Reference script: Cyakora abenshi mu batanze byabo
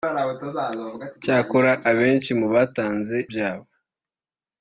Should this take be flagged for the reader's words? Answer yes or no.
no